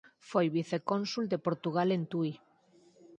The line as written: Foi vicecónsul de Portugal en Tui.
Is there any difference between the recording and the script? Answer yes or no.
no